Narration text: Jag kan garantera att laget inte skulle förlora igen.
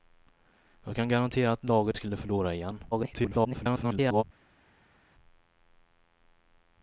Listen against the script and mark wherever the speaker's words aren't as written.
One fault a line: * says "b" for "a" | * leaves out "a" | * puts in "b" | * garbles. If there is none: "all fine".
* leaves out "inte"
* garbles